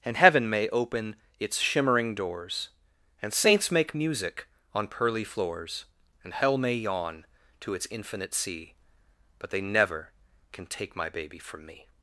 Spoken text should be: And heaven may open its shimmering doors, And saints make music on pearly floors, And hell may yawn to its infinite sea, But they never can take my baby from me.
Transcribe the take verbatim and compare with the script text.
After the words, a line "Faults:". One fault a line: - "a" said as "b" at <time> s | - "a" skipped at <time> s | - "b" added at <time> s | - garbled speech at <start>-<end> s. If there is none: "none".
And heaven may open its shimmering doors, And saints make music on pearly floors, And hell may yawn to its infinite sea, But they never can take my baby from me.
Faults:
none